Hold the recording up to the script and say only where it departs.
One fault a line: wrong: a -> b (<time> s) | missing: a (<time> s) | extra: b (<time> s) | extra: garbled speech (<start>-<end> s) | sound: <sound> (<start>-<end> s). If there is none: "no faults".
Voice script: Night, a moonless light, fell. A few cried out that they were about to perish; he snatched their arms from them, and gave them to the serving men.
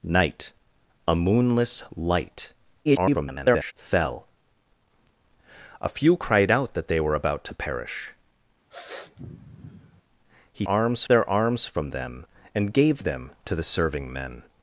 extra: garbled speech (2.8-3.7 s)
sound: sniff (8.7-10.0 s)
wrong: snatched -> arms (10.7 s)